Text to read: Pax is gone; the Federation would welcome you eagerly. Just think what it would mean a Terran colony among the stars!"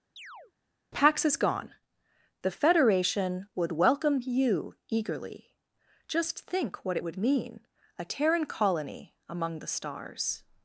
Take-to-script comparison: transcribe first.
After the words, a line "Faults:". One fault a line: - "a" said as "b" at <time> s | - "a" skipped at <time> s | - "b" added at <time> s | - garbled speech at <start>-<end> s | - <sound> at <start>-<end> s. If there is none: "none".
Pax is gone; the Federation would welcome you eagerly. Just think what it would mean a Terran colony among the stars!"
Faults:
- chirp at 0.2-0.5 s